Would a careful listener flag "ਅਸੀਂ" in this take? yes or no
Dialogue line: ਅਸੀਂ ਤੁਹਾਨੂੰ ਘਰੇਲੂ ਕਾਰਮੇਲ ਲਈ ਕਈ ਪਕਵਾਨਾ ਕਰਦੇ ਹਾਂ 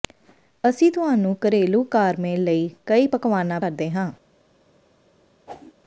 no